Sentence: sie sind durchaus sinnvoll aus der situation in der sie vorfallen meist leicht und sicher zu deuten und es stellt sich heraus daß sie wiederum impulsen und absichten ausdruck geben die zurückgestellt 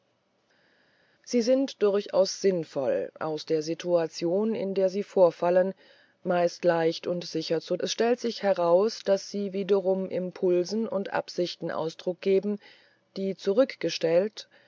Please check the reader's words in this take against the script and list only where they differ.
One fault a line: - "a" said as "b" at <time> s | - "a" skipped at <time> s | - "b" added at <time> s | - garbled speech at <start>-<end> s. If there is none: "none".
- "deuten und" skipped at 7.8 s